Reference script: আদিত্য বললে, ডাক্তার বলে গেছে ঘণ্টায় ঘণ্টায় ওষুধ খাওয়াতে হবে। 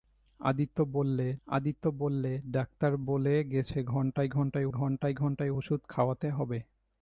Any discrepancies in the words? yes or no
yes